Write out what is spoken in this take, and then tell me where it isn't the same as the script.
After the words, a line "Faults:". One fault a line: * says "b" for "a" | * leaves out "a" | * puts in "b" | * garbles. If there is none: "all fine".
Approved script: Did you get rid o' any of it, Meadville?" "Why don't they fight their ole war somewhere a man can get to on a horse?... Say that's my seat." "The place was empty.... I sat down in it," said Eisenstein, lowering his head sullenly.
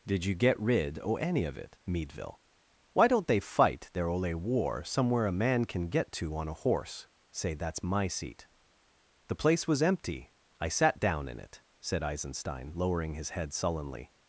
Did you get rid o' any of it, Meadville?" "Why don't they fight their ole war somewhere a man can get to on a horse?... Say that's my seat." "The place was empty.... I sat down in it," said Eisenstein, lowering his head sullenly.
Faults:
all fine